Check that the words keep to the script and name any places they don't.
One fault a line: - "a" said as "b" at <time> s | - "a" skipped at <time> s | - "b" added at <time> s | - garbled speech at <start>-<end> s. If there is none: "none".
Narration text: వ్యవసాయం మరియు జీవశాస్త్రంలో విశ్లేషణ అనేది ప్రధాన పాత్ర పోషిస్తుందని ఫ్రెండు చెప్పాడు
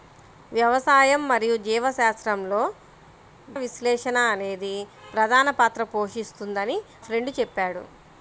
none